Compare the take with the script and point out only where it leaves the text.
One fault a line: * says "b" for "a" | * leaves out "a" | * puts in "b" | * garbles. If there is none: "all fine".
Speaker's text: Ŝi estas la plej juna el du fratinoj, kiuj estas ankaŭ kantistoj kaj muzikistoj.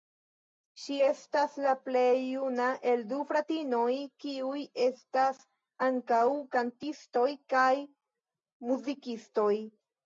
all fine